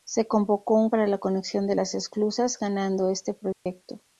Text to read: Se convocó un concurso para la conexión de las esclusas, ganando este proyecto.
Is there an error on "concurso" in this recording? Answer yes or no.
yes